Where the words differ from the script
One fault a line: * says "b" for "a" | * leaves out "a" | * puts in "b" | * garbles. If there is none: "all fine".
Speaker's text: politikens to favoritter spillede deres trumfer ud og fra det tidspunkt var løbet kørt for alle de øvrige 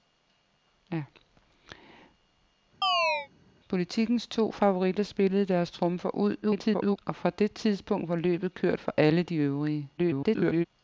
* garbles
* garbles